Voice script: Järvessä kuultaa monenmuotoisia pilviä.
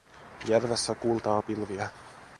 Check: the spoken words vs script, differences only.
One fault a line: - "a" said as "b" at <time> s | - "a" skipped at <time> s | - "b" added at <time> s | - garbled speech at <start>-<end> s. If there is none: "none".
- "monenmuotoisia" skipped at 1.4 s